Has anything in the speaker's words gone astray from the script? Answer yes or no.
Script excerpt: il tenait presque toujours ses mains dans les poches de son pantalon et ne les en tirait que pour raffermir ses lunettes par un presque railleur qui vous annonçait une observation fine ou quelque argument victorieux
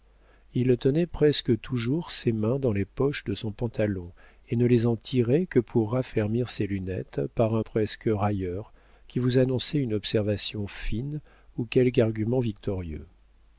no